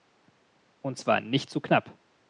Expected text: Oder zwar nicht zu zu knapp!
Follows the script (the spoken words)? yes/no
no